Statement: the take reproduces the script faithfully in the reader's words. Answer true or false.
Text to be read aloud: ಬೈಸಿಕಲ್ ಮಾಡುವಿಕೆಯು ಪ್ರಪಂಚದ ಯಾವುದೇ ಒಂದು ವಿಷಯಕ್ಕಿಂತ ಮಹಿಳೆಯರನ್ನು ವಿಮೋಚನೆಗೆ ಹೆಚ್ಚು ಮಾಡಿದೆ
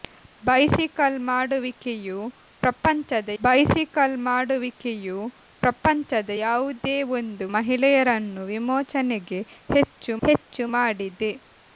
false